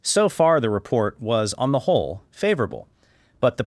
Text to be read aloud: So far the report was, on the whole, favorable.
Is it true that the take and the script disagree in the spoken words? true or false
true